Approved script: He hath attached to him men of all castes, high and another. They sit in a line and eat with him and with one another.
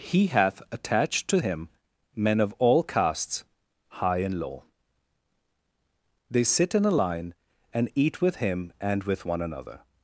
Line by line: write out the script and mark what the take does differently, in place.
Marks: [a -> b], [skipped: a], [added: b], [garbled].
He hath attached to him men of all castes, high and [another. -> low] They sit in a line and eat with him and with one another.